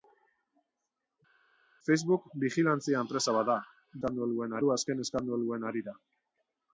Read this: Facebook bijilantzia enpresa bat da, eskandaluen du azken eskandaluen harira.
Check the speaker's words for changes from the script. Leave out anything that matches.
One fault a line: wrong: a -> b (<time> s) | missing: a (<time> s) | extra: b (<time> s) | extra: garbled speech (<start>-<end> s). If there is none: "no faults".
no faults